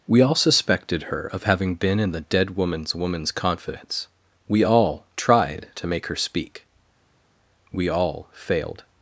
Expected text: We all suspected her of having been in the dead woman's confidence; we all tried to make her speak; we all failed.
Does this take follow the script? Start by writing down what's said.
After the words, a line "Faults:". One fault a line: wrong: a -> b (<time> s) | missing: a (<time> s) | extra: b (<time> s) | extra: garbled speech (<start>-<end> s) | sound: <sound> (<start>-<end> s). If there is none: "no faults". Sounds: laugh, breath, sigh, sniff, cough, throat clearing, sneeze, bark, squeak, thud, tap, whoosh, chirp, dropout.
We all suspected her of having been in the dead woman's woman's confidence; we all tried to make her speak; we all failed.
Faults:
extra: woman's (3.0 s)